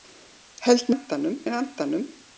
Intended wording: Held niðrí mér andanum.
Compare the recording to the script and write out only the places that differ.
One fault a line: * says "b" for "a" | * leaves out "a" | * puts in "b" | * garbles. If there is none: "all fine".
* says "andanum" for "niðrí"